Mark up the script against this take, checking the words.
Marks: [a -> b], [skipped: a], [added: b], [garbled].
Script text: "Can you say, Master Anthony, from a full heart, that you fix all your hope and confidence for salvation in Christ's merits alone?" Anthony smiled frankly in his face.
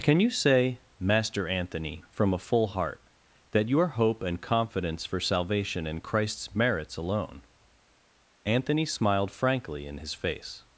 "Can you say, Master Anthony, from a full heart, that [skipped: you fix all] your hope and confidence for salvation in Christ's merits alone?" Anthony smiled frankly in his face.